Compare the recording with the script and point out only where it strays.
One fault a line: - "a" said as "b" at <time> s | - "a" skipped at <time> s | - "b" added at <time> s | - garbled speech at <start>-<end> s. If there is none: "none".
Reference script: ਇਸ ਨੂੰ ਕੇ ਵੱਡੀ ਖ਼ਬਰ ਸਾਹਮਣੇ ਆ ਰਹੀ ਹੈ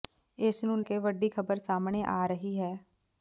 none